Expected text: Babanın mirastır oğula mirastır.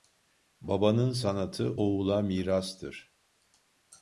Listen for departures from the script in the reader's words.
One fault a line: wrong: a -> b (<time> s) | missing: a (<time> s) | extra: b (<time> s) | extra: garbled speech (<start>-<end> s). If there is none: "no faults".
wrong: mirastır -> sanatı (1.1 s)